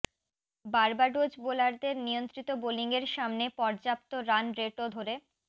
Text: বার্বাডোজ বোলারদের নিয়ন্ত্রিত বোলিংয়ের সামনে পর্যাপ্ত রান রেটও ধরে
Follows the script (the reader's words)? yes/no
yes